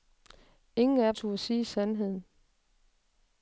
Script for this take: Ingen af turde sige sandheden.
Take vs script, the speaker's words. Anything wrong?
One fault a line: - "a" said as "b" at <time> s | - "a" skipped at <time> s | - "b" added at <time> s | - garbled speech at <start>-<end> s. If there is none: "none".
none